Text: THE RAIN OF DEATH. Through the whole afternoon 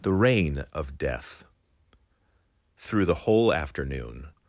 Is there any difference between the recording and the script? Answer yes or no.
no